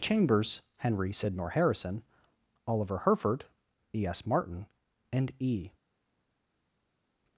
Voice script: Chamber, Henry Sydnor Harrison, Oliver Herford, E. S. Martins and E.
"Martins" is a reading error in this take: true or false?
true